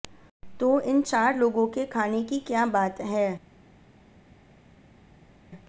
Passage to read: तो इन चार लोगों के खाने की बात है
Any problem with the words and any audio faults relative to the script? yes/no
yes